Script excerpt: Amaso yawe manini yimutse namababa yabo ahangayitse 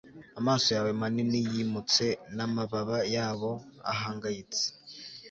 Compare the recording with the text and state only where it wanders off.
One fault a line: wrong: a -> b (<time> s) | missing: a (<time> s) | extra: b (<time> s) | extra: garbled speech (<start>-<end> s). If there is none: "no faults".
no faults